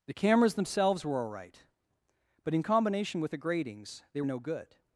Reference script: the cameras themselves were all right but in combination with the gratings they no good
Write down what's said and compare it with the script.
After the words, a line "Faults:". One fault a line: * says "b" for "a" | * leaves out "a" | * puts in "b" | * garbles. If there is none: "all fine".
the cameras themselves were all right but in combination with the gratings they no good
Faults:
all fine